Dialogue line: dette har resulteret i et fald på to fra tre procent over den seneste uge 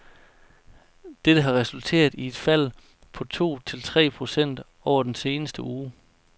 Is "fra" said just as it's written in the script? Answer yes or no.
no